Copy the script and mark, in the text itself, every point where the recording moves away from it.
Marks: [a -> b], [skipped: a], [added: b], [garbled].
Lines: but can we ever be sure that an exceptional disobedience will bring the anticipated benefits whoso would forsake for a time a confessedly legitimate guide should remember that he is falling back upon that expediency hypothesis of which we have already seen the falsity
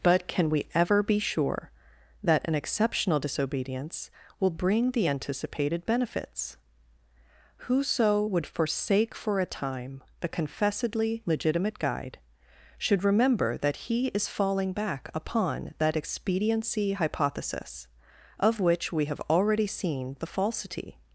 but can we ever be sure that an exceptional disobedience will bring the anticipated benefits whoso would forsake for a time [a -> the] confessedly legitimate guide should remember that he is falling back upon that expediency hypothesis of which we have already seen the falsity